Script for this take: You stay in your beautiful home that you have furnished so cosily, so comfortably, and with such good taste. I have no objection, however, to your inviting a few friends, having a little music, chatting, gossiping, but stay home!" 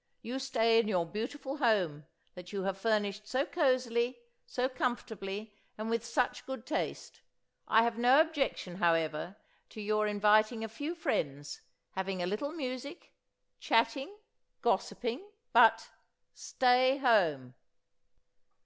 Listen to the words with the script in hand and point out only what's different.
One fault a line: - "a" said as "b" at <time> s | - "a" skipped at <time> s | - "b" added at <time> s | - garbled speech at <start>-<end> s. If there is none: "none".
none